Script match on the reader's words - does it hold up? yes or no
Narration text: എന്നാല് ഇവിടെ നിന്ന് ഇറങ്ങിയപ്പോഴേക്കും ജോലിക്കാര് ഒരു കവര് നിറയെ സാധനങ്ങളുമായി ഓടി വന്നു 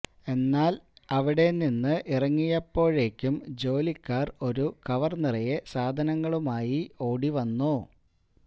no